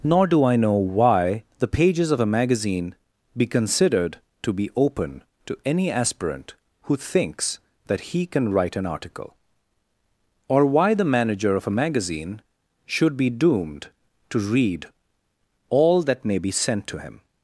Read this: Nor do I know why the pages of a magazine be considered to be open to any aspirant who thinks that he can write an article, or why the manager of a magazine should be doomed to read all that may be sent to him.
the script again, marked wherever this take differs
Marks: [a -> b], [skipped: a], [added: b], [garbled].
Nor do I know why the pages of a magazine be considered to be open to any aspirant who thinks that he can write an article, or why the manager of a magazine should be doomed to read all that may be sent to him.